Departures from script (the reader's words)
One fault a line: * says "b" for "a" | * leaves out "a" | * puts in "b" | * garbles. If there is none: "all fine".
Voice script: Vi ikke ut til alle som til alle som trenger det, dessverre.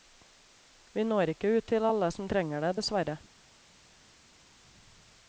* puts in "når"
* leaves out "til alle som"